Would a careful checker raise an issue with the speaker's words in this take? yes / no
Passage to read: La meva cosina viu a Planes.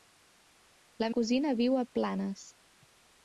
yes